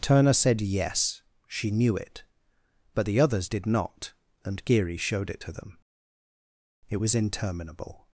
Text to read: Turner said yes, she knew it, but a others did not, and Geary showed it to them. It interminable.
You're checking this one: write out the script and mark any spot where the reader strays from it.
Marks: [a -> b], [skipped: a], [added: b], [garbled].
Turner said yes, she knew it, but [a -> the] others did not, and Geary showed it to them. It [added: was] interminable.